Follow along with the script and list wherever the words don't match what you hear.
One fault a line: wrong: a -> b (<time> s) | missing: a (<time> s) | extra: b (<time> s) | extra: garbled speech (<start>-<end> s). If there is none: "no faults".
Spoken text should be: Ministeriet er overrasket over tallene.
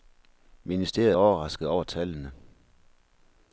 no faults